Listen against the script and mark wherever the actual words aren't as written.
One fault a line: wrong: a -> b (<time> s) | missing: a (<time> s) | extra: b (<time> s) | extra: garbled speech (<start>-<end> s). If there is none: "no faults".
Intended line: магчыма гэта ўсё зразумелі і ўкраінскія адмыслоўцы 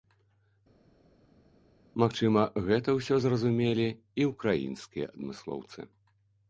no faults